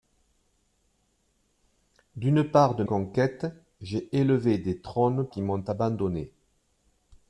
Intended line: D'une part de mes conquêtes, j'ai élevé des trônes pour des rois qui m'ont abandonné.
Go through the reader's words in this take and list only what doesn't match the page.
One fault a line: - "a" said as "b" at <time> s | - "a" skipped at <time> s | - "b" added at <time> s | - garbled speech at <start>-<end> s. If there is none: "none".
- "mes" skipped at 2.8 s
- "pour des rois" skipped at 5.3 s